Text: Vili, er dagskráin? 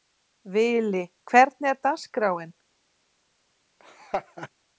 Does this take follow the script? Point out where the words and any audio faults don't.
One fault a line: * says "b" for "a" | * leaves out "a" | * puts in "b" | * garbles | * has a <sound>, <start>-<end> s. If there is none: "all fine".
* puts in "hvernig"
* has a laugh, 3.8-4.5 s